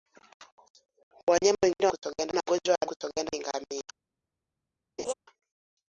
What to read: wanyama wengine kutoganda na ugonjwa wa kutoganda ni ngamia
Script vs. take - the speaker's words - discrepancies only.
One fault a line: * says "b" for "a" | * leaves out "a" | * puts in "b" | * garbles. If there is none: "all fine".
all fine